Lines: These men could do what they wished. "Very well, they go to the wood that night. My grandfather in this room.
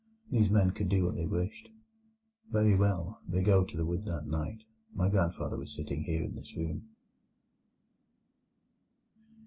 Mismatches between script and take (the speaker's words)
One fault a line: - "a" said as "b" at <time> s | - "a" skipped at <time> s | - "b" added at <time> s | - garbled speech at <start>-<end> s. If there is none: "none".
- "was sitting here" added at 5.6 s